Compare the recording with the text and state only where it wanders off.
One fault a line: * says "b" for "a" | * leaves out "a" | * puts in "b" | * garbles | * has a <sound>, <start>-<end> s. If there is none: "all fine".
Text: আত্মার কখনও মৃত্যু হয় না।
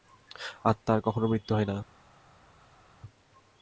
all fine